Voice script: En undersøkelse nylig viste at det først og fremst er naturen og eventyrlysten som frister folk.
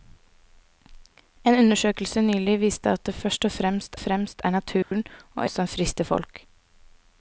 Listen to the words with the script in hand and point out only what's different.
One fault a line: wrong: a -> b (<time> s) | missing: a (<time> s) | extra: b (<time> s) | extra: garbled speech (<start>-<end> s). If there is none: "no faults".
extra: fremst (4.0 s)
missing: eventyrlysten (5.5 s)